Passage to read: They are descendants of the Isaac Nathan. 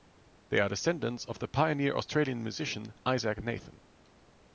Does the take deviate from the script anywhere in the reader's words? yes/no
yes